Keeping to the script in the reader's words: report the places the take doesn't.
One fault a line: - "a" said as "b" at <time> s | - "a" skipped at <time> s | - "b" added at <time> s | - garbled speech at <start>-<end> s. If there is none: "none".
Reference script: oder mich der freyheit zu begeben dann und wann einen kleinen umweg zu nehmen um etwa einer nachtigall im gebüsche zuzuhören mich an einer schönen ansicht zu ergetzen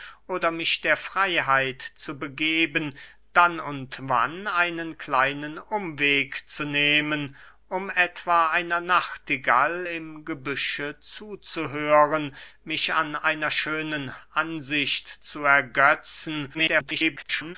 - garbled speech at 16.5-17.6 s